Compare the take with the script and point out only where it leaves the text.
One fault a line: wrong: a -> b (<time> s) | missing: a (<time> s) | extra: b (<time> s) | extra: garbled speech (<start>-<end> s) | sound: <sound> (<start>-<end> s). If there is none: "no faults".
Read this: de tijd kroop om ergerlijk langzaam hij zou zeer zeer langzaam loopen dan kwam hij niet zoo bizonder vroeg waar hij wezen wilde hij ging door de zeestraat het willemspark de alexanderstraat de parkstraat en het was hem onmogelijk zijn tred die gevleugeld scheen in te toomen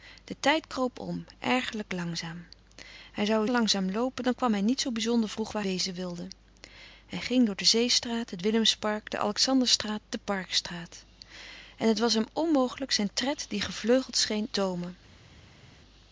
missing: zeer zeer (3.5 s)
missing: hij (5.6 s)
missing: in te (14.5 s)